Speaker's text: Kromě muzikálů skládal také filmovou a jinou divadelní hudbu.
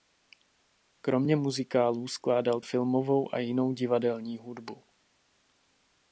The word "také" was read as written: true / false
false